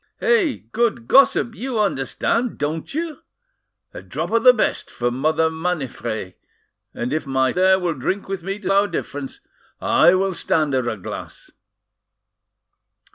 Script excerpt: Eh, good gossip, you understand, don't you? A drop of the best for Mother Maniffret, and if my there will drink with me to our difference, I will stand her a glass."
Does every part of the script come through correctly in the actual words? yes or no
yes